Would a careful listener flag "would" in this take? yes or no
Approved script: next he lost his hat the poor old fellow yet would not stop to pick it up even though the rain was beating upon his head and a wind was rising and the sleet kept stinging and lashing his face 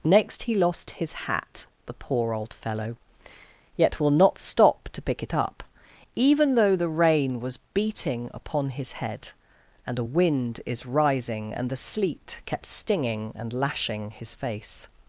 yes